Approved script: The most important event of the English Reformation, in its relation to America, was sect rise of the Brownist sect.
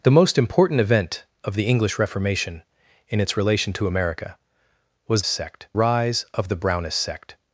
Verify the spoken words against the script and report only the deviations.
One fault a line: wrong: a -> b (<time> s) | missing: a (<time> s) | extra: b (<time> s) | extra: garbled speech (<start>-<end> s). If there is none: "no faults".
no faults